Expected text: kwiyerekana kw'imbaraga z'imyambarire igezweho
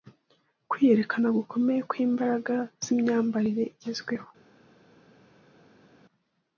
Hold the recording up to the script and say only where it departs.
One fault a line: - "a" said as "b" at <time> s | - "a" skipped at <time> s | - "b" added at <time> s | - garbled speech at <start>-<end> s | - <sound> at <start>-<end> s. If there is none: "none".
- "gukomeye" added at 1.4 s